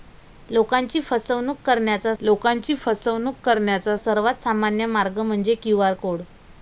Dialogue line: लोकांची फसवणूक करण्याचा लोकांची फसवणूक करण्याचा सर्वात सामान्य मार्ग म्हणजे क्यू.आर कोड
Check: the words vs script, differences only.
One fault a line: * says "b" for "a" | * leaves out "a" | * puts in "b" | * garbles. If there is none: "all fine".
all fine